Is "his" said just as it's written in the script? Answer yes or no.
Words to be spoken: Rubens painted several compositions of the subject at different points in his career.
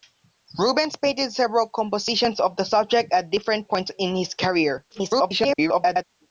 yes